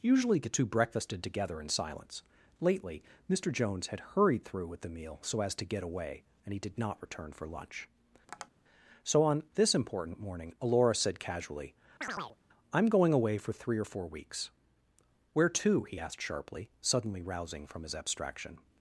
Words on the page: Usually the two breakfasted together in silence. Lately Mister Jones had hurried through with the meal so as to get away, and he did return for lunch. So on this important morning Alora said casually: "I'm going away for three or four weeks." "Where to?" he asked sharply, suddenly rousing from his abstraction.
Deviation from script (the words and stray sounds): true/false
true